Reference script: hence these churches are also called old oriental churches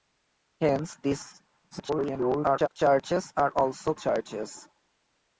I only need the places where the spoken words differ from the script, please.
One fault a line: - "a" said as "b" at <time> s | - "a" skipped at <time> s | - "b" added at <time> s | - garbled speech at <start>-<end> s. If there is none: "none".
- garbled speech at 1.7-2.7 s
- "called old oriental" skipped at 3.9 s